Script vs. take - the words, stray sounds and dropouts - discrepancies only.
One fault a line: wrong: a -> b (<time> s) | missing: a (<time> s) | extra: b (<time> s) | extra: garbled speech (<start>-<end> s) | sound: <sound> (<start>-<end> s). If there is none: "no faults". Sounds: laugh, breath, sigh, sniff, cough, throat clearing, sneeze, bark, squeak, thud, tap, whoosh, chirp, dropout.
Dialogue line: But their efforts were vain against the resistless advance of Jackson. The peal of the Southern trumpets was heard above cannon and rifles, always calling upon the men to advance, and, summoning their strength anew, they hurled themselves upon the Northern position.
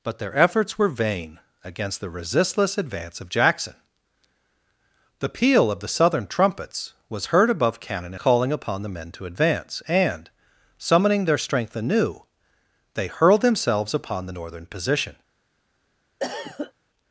missing: and rifles always (8.2 s)
sound: cough (16.2-16.7 s)